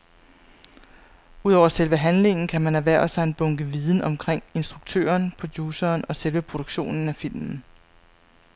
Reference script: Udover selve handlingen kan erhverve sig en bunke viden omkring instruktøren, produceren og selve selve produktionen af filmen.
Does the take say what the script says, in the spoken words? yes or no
no